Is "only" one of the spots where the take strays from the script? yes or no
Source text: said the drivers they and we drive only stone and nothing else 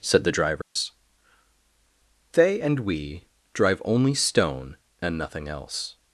no